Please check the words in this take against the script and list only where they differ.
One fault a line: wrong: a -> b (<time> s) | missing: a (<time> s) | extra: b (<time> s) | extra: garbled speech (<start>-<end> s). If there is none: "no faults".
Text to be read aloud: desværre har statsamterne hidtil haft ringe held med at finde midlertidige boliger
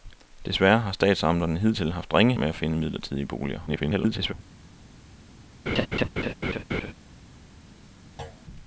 missing: held (2.4 s)
extra: garbled speech (3.7-4.3 s)